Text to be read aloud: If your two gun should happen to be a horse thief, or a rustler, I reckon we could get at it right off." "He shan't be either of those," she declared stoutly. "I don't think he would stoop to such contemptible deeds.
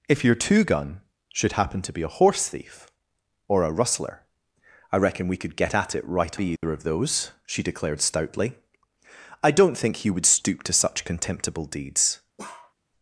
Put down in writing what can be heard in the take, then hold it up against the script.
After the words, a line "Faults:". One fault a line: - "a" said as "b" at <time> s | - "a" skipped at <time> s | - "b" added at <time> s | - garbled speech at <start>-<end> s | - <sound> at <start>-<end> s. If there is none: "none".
If your two gun should happen to be a horse thief, or a rustler, I reckon we could get at it right be either of those," she declared stoutly. "I don't think he would stoop to such contemptible deeds.
Faults:
- "off He shan't" skipped at 6.4 s
- dropout at 6.6-6.6 s
- bark at 12.4-12.7 s